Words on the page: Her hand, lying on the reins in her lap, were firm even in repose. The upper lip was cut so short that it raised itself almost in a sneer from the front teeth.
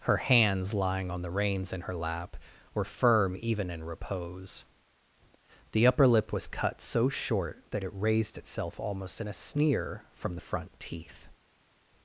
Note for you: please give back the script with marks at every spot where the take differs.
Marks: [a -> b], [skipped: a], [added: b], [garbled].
Her [hand, -> hands] lying on the reins in her lap, were firm even in repose. The upper lip was cut so short that it raised itself almost in a sneer from the front teeth.